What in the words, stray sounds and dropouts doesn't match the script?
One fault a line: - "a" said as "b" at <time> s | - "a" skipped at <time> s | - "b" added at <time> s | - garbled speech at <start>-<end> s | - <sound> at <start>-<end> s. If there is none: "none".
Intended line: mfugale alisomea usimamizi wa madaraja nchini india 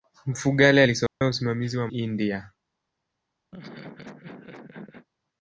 - dropout at 1.1-1.2 s
- "madaraja nchini" skipped at 1.9 s
- laugh at 3.5-5.1 s